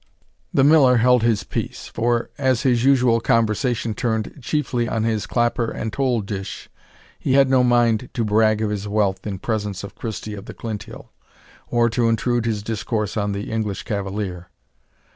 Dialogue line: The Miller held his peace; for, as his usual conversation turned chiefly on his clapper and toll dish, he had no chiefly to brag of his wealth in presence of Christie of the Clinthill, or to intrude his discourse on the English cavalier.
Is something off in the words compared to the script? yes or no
yes